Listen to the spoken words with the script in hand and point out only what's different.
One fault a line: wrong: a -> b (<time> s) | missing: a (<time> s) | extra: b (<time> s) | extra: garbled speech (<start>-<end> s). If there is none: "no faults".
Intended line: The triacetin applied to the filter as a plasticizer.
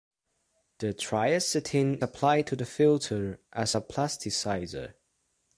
no faults